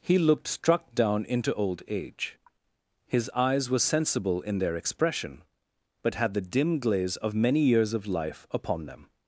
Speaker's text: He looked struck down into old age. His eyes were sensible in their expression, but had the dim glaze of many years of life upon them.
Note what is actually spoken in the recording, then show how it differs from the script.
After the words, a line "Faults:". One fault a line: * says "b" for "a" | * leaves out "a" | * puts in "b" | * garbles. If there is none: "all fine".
He looked struck down into old age. His eyes were sensible in their expression, but had the dim glaze of many years of life upon them.
Faults:
all fine